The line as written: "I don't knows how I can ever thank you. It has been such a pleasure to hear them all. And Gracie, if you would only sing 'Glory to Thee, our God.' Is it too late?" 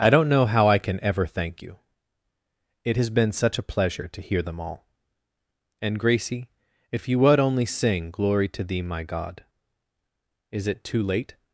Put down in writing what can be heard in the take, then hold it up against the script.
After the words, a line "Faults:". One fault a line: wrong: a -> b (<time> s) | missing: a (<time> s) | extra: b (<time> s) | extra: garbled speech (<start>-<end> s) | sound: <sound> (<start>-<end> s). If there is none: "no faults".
"I don't know how I can ever thank you. It has been such a pleasure to hear them all. And Gracie, if you would only sing 'Glory to Thee, my God.' Is it too late?"
Faults:
wrong: knows -> know (0.3 s)
wrong: our -> my (8.8 s)